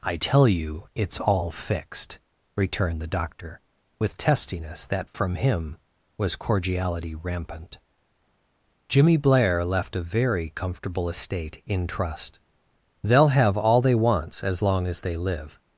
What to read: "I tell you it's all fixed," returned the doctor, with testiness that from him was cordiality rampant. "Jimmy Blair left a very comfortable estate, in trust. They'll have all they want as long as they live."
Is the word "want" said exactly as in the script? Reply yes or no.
no